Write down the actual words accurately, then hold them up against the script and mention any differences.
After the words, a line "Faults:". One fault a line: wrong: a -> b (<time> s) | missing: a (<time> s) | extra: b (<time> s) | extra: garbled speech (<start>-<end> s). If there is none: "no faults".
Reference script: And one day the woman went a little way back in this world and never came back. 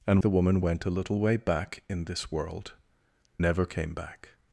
And the woman went a little way back in this world never came back.
Faults:
missing: one day (0.2 s)
missing: and (2.7 s)